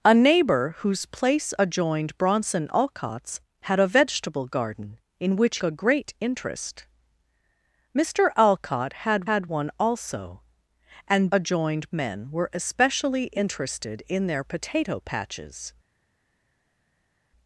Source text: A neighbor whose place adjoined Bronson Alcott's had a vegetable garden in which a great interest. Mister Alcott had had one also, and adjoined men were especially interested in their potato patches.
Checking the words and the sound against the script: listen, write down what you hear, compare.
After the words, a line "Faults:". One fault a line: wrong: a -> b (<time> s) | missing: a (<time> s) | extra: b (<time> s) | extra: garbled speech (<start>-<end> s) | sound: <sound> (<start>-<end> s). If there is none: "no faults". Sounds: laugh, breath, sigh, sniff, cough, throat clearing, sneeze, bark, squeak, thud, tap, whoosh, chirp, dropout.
A neighbor whose place adjoined Bronson Alcott's had a vegetable garden in which a great interest. Mister Alcott had had one also, and adjoined men were especially interested in their potato patches.
Faults:
no faults